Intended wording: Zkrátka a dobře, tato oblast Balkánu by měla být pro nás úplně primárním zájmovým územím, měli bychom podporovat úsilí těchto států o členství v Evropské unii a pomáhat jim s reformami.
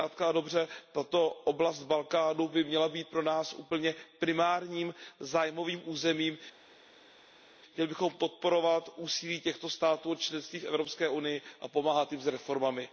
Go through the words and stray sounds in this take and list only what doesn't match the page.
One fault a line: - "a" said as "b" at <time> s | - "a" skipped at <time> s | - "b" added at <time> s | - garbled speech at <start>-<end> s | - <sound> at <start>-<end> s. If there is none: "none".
none